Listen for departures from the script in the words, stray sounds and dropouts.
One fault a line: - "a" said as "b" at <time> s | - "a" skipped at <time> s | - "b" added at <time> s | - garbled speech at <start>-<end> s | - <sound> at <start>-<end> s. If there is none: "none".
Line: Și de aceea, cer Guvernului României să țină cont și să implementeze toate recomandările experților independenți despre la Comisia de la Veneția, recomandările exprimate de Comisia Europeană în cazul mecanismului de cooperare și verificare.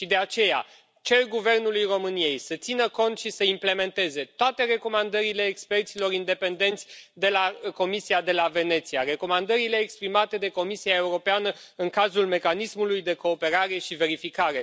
- "despre" said as "de" at 7.1 s